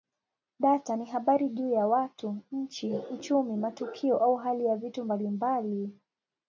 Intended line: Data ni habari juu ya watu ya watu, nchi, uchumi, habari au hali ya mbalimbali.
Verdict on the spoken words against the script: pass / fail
fail